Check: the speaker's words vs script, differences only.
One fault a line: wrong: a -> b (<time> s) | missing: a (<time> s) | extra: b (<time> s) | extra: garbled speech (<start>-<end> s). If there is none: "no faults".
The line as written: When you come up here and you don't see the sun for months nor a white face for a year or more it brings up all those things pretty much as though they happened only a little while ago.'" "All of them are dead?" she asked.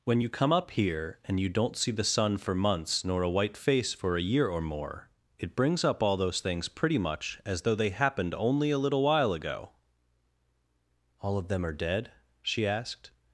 no faults